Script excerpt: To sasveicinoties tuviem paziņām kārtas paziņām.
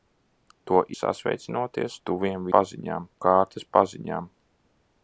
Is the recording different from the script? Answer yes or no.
no